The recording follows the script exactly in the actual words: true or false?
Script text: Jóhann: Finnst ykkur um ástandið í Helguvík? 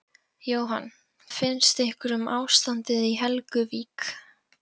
true